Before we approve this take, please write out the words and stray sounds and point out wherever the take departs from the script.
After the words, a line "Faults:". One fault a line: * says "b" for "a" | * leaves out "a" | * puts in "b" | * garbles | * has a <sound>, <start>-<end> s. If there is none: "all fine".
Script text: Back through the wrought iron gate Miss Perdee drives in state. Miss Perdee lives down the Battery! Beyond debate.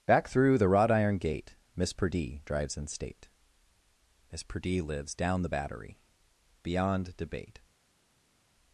Back through the wrought iron gate Miss Perdee drives in state. Miss Perdee lives down the Battery! Beyond debate.
Faults:
all fine